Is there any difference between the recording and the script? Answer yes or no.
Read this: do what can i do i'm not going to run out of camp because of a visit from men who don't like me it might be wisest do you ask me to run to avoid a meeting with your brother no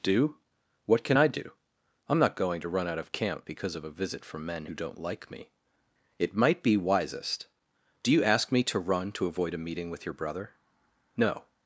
no